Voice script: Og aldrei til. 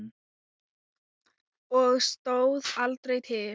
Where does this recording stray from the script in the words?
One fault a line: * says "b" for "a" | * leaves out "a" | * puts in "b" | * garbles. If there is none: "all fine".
* puts in "stóð"